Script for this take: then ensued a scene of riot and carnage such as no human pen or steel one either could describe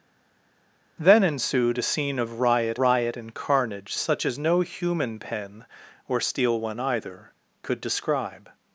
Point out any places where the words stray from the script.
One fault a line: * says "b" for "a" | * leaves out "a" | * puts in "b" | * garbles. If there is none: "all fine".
* puts in "riot"